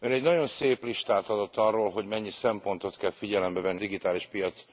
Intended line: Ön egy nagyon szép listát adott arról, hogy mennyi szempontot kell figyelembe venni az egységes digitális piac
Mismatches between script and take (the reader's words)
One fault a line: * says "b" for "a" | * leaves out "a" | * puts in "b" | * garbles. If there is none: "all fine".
* leaves out "az egységes"